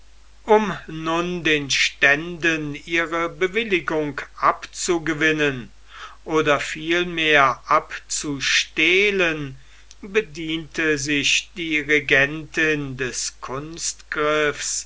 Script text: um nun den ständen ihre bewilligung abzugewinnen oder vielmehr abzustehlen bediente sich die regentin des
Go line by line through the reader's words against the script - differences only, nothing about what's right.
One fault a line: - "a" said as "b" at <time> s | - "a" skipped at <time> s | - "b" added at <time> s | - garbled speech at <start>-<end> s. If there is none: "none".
none